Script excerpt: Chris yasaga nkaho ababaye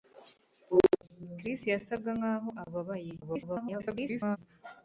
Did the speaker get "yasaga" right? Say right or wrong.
right